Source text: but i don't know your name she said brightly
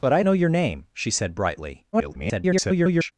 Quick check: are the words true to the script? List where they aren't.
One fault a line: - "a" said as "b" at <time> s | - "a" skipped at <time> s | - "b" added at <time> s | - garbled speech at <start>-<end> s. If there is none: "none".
- "don't" skipped at 0.2 s
- garbled speech at 1.9-3.1 s